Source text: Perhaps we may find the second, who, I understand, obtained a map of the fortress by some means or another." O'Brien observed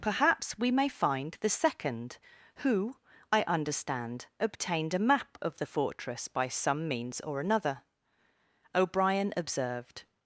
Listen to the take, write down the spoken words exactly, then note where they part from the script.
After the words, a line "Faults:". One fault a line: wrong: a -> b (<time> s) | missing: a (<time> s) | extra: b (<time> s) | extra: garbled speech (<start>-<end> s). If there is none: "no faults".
Perhaps we may find the second, who, I understand, obtained a map of the fortress by some means or another." O'Brien observed
Faults:
no faults